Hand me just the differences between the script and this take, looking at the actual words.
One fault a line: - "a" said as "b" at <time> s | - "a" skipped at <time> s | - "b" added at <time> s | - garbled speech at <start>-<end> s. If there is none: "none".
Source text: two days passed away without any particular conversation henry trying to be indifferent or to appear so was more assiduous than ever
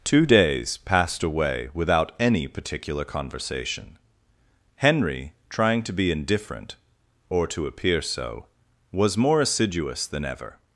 none